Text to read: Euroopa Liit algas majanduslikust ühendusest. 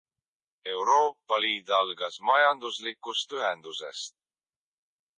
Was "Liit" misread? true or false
false